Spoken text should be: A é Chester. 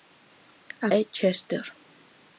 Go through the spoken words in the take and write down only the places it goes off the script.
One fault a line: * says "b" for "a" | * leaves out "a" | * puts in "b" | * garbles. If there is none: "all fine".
all fine